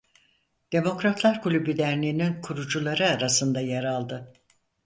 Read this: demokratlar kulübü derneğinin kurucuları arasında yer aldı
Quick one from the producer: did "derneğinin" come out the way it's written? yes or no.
yes